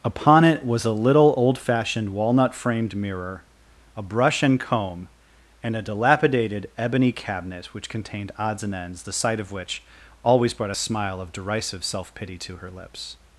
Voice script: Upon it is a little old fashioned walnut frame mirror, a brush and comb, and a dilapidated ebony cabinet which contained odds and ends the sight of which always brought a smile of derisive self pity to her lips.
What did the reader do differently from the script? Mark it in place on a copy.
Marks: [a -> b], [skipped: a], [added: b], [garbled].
Upon it [is -> was] a little old fashioned walnut [frame -> framed] mirror, a brush and comb, and a dilapidated ebony cabinet which contained odds and ends the sight of which always brought a smile of derisive self pity to her lips.